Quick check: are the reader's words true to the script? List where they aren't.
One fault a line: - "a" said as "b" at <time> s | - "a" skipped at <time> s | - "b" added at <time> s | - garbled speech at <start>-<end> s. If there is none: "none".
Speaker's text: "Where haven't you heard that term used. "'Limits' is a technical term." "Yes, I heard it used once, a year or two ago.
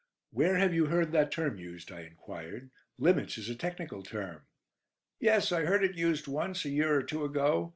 - "haven't" said as "have" at 0.6 s
- "I enquired" added at 1.9 s